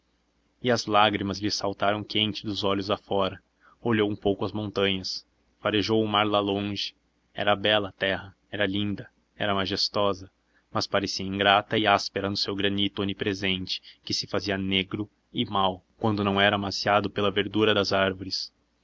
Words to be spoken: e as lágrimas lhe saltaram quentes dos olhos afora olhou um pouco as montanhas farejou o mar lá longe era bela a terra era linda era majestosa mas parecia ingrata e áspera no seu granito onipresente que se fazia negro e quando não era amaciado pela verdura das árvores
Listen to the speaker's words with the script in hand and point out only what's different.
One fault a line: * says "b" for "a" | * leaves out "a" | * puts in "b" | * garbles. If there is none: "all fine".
* puts in "mau"